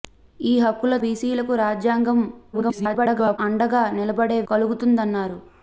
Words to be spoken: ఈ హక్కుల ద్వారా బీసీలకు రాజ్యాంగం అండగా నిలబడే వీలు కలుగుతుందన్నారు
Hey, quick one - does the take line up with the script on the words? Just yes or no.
no